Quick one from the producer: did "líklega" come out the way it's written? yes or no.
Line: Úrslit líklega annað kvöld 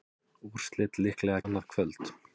yes